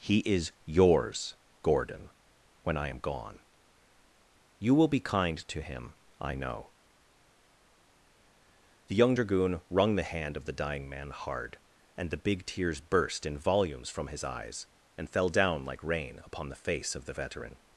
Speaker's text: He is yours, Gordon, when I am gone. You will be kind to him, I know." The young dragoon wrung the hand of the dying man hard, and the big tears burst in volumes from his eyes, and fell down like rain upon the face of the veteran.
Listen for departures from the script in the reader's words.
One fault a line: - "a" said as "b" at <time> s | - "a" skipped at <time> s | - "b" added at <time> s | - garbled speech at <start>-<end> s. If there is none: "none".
none